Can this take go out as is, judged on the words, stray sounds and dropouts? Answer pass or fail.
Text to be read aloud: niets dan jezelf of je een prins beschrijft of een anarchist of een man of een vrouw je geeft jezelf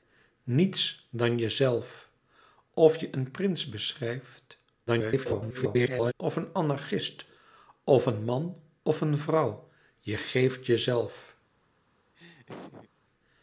fail